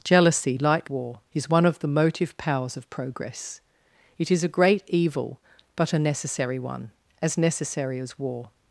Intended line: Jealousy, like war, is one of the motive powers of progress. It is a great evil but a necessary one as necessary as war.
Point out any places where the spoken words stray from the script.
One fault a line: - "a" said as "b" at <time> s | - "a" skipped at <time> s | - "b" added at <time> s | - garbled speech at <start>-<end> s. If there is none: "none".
none